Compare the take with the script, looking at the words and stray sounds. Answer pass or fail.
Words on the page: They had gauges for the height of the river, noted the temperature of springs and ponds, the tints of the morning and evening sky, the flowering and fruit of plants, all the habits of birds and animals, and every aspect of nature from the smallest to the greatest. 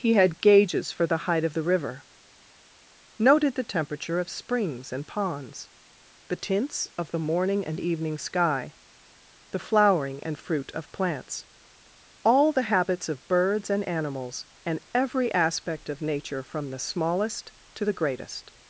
fail